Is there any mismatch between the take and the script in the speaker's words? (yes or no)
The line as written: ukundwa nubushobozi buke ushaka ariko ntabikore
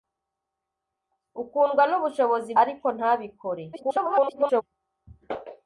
yes